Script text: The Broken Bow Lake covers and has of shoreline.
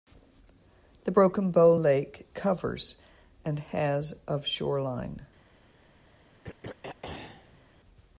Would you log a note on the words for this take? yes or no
no